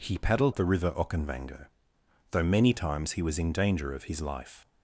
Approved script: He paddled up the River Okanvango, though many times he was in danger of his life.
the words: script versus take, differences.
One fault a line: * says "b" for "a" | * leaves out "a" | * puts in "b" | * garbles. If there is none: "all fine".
* leaves out "up"